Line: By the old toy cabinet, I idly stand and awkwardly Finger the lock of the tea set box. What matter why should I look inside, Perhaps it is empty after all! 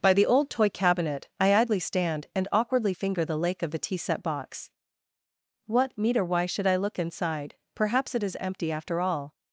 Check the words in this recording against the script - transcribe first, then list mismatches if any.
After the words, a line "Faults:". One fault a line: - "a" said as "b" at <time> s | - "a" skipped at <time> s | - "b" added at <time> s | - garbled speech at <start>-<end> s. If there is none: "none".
By the old toy cabinet, I idly stand and awkwardly Finger the lake of the tea set box. What meter why should I look inside, Perhaps it is empty after all!
Faults:
- "lock" said as "lake" at 3.4 s
- "matter" said as "meter" at 6.0 s